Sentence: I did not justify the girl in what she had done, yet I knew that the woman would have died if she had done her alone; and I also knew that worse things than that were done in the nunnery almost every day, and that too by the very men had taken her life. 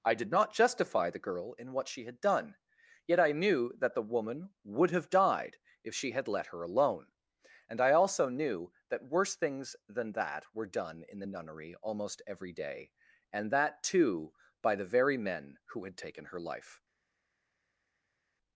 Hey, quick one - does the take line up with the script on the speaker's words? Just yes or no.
no